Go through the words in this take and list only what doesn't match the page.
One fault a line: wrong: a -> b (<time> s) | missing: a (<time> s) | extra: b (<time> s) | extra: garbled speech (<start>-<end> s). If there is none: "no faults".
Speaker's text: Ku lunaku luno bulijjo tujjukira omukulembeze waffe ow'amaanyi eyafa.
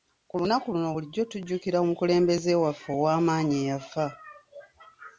no faults